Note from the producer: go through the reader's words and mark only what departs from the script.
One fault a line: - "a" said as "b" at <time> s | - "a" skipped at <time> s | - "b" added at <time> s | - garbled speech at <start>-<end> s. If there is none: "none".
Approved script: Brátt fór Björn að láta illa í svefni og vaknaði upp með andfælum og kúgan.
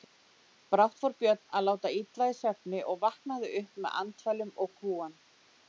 none